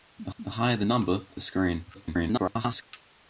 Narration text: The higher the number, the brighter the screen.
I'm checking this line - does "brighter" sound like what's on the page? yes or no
no